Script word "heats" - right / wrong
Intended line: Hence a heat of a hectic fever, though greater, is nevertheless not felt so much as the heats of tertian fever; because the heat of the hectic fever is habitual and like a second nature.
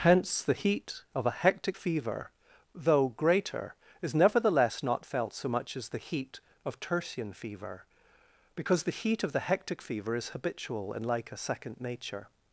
wrong